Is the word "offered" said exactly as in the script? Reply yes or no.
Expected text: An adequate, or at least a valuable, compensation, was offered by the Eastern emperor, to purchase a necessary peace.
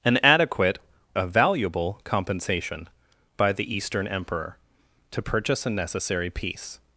no